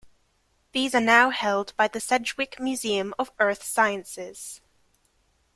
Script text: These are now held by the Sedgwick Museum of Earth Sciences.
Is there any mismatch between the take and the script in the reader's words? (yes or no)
no